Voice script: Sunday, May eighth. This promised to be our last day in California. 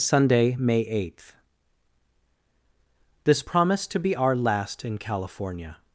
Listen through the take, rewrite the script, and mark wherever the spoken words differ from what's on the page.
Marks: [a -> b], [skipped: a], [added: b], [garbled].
Sunday, May eighth. This promised to be our last [skipped: day] in California.